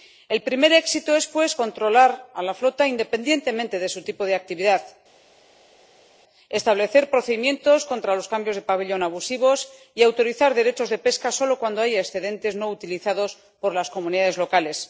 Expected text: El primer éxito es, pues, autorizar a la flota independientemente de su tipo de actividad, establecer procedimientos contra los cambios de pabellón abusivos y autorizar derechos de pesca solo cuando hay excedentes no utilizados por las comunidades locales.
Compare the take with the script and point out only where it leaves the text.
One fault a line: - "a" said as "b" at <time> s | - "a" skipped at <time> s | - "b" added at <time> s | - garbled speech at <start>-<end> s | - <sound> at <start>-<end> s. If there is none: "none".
- "autorizar" said as "controlar" at 1.6 s